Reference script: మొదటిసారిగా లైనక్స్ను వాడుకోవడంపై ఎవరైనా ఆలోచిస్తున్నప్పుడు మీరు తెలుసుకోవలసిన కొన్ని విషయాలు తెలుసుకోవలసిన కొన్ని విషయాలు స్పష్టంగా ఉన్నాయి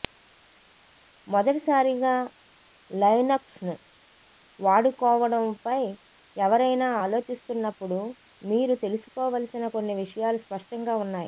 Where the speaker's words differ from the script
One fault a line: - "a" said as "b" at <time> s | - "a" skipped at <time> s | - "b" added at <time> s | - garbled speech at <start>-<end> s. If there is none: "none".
- "తెలుసుకోవలసిన కొన్ని విషయాలు" skipped at 10.4 s